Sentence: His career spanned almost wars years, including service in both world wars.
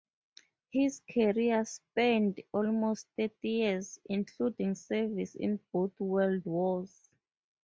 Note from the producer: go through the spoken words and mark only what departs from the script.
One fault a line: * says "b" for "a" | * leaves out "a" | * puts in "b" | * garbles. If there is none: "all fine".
* says "thirty" for "wars"